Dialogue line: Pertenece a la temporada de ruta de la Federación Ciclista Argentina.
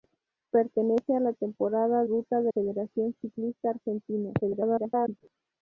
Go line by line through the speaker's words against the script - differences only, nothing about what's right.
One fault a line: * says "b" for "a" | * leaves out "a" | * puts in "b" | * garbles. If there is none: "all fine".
* leaves out "de"
* leaves out "la"
* garbles